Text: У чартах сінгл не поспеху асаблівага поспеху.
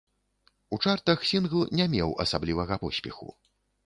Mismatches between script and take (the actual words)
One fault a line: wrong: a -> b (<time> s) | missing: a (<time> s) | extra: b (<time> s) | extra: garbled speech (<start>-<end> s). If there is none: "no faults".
wrong: поспеху -> меў (1.9 s)